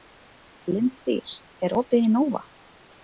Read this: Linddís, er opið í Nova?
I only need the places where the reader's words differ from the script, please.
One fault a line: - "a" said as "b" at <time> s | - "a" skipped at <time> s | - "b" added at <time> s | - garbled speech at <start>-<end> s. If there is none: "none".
none